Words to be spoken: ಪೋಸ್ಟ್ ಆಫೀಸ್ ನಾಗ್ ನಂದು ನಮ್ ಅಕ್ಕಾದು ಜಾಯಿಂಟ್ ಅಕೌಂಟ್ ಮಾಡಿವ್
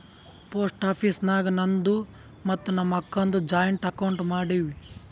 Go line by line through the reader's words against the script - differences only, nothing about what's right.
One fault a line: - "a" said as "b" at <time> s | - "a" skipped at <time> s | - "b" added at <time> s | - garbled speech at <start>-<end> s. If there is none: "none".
- "ಮತ್ತ" added at 2.4 s